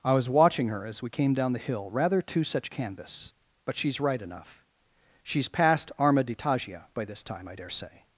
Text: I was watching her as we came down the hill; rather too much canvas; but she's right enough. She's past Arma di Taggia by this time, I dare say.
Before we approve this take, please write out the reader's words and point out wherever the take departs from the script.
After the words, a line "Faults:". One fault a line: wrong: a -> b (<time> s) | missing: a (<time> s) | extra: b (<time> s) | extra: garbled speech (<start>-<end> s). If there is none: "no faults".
I was watching her as we came down the hill; rather too such canvas; but she's right enough. She's past Arma di Taggia by this time, I dare say.
Faults:
wrong: much -> such (2.4 s)